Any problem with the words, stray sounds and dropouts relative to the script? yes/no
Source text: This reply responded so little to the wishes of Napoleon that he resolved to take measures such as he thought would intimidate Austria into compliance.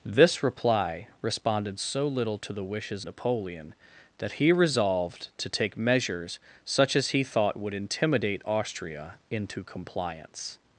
yes